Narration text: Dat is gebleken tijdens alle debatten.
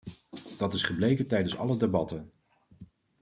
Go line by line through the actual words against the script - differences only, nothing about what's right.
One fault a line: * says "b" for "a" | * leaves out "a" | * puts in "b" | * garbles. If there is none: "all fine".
all fine